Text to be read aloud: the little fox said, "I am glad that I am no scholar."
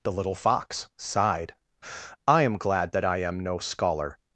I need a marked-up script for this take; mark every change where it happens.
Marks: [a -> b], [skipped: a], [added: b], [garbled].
the little fox [said, -> sighed] "I am glad that I am no scholar."